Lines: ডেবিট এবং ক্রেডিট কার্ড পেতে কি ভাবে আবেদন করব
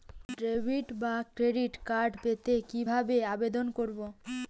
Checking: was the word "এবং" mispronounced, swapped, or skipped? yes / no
yes